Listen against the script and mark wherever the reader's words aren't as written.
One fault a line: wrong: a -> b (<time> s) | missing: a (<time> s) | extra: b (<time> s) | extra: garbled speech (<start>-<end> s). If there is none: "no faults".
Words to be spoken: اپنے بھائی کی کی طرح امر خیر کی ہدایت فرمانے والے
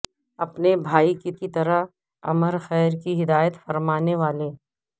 no faults